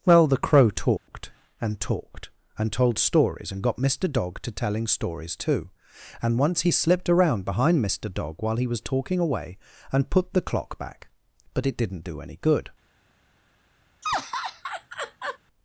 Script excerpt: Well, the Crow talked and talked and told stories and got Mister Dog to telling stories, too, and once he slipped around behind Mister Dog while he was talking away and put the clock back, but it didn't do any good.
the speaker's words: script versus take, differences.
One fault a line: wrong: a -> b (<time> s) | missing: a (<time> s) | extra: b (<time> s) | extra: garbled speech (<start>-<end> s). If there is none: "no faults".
no faults